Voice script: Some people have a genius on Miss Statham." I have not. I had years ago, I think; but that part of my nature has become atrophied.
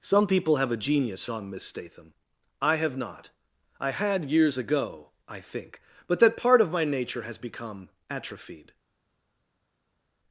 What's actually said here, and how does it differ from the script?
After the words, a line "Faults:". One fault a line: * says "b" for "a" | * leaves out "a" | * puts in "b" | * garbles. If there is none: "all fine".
Some people have a genius on Miss Statham." I have not. I had years ago, I think; but that part of my nature has become atrophied.
Faults:
all fine